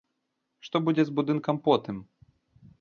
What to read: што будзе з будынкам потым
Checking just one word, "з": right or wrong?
right